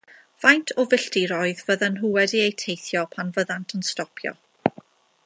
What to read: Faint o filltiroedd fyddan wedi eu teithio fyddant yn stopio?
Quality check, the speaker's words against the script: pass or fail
fail